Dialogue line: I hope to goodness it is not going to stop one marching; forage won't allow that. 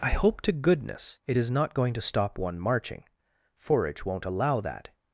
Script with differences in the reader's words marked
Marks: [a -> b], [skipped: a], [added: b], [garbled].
I hope to goodness it is not going to stop one marching; forage won't allow that.